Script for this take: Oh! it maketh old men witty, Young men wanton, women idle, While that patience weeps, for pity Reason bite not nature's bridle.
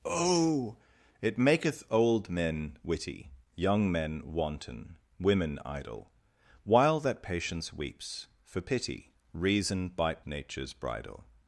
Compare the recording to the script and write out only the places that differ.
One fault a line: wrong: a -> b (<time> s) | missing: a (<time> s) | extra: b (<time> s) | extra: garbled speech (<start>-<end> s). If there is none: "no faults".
missing: not (10.2 s)